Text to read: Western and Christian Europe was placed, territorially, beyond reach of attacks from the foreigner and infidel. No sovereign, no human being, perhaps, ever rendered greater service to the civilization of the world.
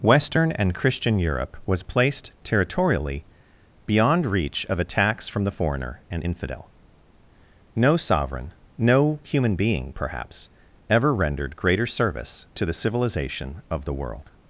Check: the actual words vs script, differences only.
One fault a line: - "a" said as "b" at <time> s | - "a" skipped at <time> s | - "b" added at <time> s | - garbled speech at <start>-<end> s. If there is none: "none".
none